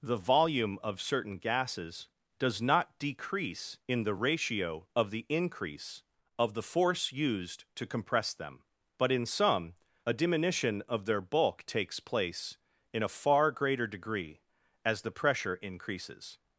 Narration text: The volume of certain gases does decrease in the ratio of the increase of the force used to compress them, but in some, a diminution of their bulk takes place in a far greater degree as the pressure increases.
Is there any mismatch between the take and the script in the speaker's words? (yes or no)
yes